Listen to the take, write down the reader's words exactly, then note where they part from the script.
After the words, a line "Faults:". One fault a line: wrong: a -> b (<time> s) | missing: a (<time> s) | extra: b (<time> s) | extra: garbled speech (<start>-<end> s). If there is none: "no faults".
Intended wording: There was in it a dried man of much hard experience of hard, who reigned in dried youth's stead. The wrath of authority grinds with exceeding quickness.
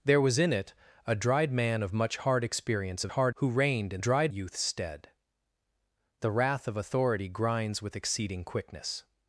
There was in it a dried man of much hard experience of hard, who reigned in dried youth's stead. The wrath of authority grinds with exceeding quickness.
Faults:
no faults